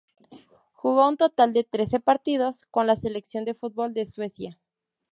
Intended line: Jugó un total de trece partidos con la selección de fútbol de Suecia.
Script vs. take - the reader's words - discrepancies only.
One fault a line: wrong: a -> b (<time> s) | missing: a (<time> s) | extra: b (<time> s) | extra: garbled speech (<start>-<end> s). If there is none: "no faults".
no faults